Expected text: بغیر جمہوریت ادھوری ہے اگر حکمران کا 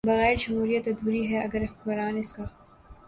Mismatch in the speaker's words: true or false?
true